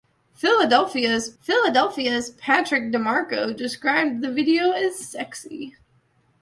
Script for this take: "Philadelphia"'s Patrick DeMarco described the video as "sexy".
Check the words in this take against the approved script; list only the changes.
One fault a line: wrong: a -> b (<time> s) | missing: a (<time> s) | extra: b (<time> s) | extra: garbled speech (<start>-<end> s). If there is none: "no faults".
extra: philadelphia"'s (1.4 s)